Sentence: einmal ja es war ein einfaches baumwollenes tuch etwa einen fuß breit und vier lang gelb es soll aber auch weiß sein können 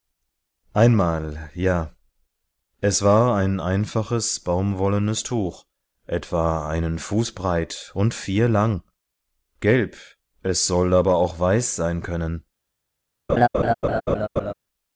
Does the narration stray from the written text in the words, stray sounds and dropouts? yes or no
yes